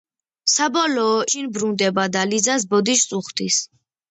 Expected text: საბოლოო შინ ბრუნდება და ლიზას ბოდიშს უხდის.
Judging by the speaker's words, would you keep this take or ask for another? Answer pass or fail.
pass